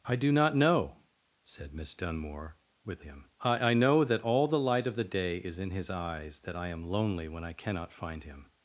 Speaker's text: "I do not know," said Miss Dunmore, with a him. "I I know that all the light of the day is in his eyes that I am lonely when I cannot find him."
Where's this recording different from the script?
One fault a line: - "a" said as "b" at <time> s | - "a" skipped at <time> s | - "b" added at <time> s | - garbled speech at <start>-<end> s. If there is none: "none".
none